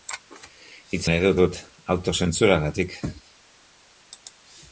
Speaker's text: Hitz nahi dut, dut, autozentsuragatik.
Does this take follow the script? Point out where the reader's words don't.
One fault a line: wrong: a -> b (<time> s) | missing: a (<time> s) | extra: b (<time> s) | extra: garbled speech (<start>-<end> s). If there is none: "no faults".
no faults